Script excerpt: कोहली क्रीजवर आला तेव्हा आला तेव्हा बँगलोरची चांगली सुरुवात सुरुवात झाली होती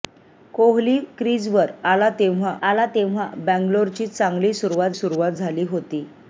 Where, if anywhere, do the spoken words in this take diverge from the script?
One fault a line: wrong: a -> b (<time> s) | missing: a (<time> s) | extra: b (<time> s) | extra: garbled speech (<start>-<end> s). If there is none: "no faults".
no faults